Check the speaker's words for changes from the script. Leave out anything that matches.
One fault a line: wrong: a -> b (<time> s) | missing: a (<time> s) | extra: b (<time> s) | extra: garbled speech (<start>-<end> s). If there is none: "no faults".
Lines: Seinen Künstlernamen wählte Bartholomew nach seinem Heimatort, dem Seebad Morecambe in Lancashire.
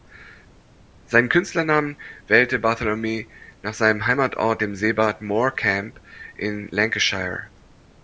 no faults